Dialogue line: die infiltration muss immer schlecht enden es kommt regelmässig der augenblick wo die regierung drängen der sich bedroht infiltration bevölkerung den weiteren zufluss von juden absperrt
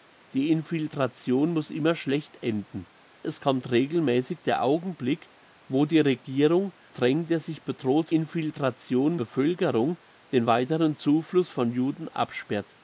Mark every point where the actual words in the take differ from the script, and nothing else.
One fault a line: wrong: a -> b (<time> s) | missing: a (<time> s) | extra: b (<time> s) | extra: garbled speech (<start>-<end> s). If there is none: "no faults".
no faults